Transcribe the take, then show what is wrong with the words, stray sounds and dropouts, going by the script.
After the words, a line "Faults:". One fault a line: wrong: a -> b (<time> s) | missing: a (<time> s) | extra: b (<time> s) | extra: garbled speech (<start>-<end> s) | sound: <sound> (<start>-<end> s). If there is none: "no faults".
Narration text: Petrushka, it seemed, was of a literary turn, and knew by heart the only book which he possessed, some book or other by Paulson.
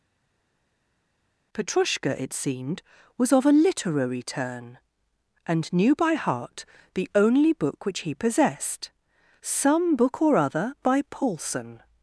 Petrushka, it seemed, was of a literary turn, and knew by heart the only book which he possessed, some book or other by Paulson.
Faults:
no faults